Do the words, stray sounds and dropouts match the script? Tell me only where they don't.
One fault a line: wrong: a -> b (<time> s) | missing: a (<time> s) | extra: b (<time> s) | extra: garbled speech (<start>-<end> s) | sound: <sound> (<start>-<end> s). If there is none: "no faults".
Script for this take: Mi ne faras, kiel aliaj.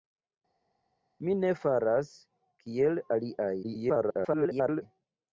extra: garbled speech (3.6-4.8 s)